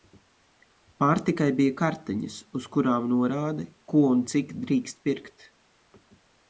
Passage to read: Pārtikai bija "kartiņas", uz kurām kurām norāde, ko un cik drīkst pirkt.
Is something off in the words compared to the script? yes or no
yes